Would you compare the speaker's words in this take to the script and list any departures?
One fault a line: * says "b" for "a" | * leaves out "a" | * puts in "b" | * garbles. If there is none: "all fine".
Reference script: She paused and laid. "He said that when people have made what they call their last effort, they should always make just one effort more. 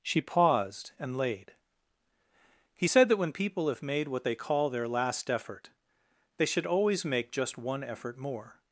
all fine